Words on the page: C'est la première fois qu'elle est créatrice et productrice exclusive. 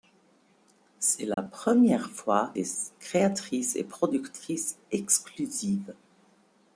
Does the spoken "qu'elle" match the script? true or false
false